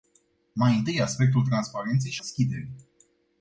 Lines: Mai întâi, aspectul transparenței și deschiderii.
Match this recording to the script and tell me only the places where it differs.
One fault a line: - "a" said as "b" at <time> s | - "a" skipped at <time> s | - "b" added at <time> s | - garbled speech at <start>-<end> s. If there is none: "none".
none